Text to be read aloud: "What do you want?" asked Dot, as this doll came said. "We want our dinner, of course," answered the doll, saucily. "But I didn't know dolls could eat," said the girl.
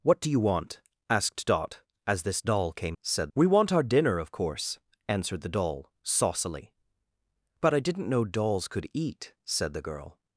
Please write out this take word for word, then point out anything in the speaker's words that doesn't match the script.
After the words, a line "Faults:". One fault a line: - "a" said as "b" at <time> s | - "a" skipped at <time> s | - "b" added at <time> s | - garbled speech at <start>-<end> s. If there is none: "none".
"What do you want?" asked Dot, as this doll came said. "We want our dinner, of course," answered the doll, saucily. "But I didn't know dolls could eat," said the girl.
Faults:
none